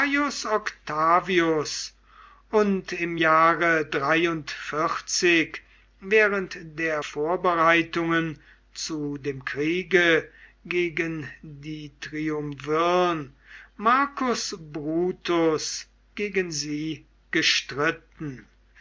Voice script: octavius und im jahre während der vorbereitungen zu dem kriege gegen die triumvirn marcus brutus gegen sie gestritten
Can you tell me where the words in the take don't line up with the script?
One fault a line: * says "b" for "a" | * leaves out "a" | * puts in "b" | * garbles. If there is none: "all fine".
all fine